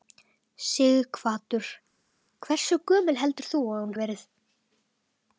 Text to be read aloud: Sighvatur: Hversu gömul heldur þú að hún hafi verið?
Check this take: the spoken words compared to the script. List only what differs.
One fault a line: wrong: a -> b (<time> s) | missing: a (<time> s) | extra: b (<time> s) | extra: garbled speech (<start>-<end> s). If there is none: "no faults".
missing: hafi (3.9 s)